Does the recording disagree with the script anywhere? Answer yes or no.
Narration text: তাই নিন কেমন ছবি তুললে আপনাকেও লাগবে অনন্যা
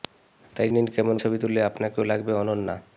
no